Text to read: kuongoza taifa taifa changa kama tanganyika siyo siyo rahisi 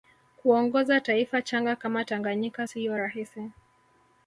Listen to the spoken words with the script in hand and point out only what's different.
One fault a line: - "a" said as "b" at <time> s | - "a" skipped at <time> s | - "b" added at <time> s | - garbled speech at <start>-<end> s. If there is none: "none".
- "taifa" skipped at 1.4 s
- "siyo" skipped at 3.0 s